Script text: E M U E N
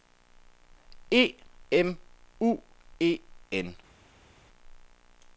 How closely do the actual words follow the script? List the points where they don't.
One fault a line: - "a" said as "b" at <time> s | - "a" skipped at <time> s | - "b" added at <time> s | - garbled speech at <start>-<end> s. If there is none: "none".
none